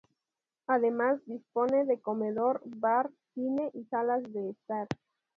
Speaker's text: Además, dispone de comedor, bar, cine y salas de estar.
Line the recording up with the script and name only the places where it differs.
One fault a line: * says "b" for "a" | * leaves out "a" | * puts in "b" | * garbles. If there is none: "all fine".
all fine